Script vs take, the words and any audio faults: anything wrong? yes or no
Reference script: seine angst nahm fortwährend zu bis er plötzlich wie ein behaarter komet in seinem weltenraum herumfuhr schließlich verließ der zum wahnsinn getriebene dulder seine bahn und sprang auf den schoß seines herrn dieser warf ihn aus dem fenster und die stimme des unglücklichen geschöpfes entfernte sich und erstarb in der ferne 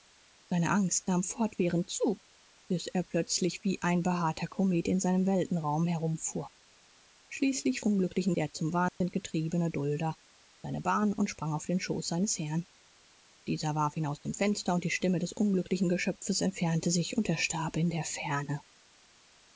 yes